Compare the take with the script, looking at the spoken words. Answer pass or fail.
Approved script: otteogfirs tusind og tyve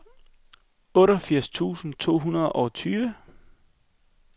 fail